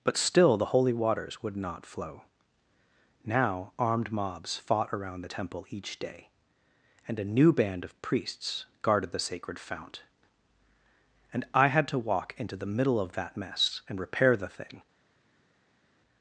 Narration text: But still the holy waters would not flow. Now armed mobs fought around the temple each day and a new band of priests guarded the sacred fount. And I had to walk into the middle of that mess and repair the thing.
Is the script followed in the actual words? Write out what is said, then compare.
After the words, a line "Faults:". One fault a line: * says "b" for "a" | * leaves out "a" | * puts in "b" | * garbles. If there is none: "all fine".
But still the holy waters would not flow. Now armed mobs fought around the temple each day and a new band of priests guarded the sacred fount. And I had to walk into the middle of that mess and repair the thing.
Faults:
all fine